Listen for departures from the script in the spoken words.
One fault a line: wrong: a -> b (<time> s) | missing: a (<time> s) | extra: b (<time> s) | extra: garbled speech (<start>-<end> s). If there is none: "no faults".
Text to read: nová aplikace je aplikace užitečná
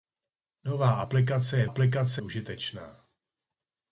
no faults